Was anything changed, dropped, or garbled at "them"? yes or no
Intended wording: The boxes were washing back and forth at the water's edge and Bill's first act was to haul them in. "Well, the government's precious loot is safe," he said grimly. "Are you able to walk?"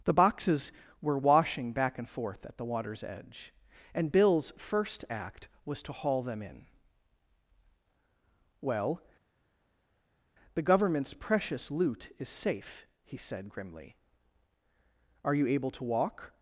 no